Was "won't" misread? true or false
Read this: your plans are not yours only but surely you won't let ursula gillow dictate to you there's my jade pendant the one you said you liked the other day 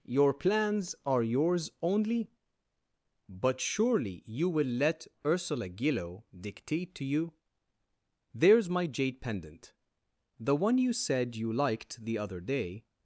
true